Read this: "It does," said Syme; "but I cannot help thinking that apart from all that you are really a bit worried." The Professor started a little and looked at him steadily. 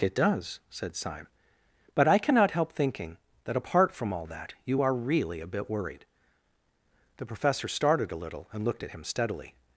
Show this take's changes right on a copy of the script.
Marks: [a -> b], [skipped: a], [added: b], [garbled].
"It does," said Syme; "but I cannot help thinking that apart from all that you are really a bit worried." The Professor started a little and looked at him steadily.